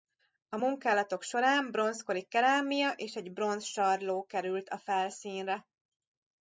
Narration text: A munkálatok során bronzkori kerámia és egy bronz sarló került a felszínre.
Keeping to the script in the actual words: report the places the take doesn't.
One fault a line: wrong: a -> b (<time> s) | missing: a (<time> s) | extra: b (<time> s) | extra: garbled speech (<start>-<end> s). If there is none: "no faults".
no faults